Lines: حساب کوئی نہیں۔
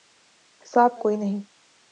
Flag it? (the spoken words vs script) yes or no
no